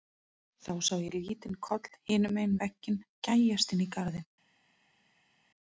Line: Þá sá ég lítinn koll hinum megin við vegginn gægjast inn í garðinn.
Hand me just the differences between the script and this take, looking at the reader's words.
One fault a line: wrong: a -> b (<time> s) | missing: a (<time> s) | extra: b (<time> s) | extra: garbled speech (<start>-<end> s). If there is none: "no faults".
missing: við (2.6 s)